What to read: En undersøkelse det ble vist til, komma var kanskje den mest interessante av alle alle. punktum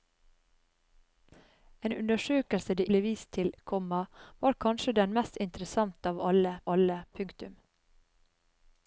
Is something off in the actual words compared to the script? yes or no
no